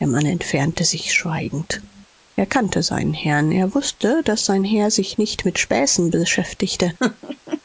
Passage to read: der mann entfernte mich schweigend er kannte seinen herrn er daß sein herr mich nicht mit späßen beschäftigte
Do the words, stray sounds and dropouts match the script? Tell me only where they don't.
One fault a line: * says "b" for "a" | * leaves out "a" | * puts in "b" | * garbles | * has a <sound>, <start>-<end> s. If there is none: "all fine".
* says "sich" for "mich"
* puts in "wußte"
* says "sich" for "mich"
* has a laugh, 7.0-7.6 s